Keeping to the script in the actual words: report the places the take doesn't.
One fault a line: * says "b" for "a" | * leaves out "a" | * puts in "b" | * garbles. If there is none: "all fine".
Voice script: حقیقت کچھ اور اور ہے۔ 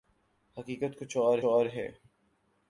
all fine